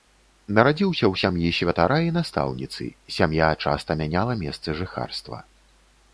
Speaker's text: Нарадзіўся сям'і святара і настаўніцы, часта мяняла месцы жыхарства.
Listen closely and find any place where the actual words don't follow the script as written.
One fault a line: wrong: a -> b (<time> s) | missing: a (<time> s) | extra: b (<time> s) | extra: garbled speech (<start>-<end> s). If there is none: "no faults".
extra: ў (1.1 s)
extra: сям'я (3.2 s)